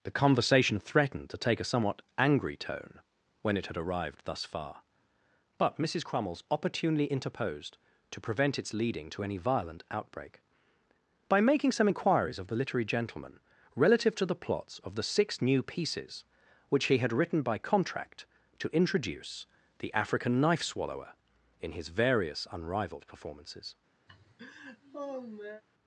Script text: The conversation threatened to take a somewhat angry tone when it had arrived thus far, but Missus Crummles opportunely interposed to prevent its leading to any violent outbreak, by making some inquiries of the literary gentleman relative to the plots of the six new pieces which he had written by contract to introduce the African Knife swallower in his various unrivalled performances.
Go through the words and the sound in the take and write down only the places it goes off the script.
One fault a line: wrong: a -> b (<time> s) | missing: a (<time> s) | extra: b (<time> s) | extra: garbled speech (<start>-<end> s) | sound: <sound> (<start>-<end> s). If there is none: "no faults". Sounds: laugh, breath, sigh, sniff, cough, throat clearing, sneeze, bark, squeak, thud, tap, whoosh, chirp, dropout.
sound: laugh (24.1-25.6 s)